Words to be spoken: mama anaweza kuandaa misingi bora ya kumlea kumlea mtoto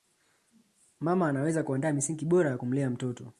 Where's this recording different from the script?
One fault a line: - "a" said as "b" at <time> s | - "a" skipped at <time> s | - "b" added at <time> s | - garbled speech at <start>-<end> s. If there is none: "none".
- "kumlea" skipped at 2.9 s